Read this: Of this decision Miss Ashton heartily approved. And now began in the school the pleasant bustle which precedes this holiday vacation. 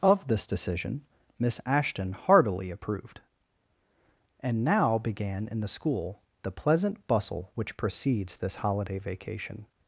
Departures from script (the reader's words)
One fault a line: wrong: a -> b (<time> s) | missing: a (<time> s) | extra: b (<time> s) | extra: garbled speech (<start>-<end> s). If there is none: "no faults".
no faults